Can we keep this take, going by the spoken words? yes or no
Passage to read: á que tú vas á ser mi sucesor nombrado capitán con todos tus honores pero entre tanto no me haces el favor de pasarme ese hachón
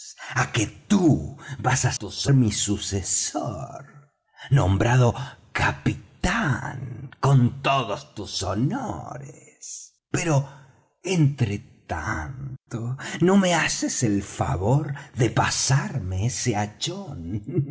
no